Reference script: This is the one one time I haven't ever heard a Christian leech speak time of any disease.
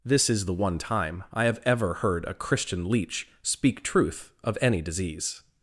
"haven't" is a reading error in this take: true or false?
true